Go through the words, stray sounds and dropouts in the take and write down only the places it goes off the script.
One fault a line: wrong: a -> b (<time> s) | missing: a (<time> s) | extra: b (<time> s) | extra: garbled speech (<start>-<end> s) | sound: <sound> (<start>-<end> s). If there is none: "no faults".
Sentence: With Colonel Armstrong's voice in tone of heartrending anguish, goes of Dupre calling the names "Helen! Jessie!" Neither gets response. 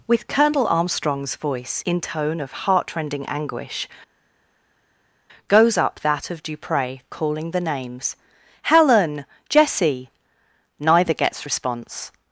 extra: up that (5.8 s)